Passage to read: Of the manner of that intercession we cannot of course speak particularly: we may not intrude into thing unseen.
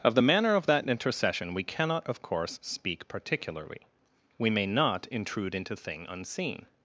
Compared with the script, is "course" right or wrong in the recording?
right